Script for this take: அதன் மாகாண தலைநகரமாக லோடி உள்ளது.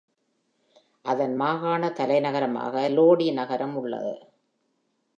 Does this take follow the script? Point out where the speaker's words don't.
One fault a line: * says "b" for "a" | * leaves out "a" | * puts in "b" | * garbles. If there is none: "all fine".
* puts in "நகரம்"